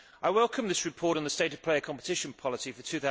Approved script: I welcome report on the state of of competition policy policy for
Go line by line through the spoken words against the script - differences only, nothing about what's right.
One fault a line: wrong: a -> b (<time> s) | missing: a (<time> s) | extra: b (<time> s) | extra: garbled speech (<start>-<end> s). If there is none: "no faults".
extra: this (0.7 s)
extra: play (1.6 s)
missing: policy (2.7 s)